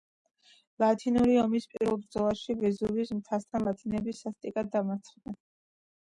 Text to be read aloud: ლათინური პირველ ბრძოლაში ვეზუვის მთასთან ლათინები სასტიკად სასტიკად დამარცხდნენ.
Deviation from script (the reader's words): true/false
true